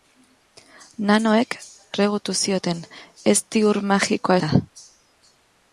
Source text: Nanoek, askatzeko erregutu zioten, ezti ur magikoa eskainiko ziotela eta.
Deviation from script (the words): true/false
true